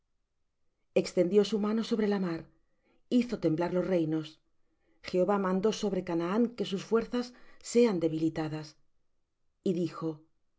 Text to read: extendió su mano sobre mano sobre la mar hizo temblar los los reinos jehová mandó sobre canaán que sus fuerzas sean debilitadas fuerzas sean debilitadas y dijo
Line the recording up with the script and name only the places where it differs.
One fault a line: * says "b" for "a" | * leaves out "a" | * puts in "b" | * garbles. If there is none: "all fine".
* leaves out "mano sobre"
* leaves out "los"
* leaves out "fuerzas sean debilitadas"